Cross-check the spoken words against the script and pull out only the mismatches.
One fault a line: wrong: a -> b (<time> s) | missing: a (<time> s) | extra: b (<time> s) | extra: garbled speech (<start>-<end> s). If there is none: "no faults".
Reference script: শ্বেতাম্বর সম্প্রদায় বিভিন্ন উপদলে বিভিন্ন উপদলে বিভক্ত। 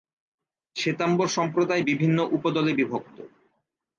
missing: বিভিন্ন উপদলে (2.7 s)